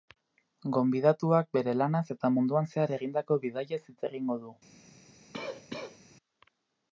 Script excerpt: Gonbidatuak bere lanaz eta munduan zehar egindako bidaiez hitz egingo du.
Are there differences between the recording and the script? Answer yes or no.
no